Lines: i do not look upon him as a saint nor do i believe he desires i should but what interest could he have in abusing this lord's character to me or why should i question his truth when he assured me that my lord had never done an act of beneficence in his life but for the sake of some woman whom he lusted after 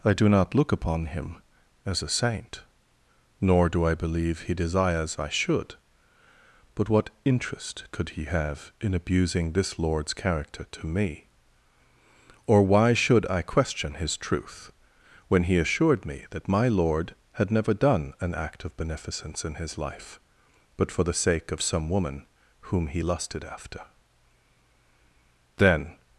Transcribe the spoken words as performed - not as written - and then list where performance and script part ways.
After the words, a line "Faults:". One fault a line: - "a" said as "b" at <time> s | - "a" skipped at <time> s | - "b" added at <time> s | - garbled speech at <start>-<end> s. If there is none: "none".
i do not look upon him as a saint nor do i believe he desires i should but what interest could he have in abusing this lord's character to me or why should i question his truth when he assured me that my lord had never done an act of beneficence in his life but for the sake of some woman whom he lusted after then
Faults:
- "then" added at 25.6 s